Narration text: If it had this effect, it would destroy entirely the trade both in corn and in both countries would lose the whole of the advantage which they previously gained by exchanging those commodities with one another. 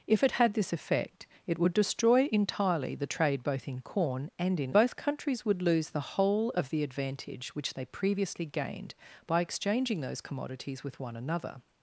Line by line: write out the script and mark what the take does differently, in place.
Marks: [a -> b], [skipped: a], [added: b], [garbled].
If it had this effect, it would destroy entirely the trade both in corn and in both countries would lose the whole of the advantage which they previously gained by exchanging those commodities with one another.